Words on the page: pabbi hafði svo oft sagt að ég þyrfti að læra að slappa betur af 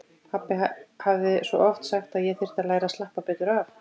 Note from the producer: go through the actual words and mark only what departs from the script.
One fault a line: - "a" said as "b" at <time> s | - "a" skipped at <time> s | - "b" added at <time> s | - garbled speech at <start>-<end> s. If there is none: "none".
none